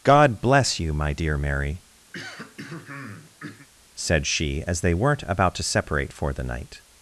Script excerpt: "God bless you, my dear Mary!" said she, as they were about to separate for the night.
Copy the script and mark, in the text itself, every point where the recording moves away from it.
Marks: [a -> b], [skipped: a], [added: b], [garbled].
"God bless you, my dear Mary!" said she, as they [were -> weren't] about to separate for the night.